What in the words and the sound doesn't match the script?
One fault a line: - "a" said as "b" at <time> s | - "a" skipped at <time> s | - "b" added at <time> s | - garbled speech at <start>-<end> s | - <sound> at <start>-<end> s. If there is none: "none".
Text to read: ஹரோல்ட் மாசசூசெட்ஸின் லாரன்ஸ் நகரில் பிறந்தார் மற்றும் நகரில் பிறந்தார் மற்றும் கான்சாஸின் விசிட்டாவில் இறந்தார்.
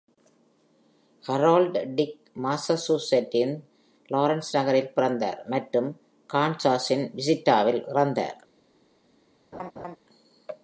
- "டிக்" added at 2.0 s
- "நகரில் பிறந்தார் மற்றும்" skipped at 5.9 s
- laugh at 9.5-10.0 s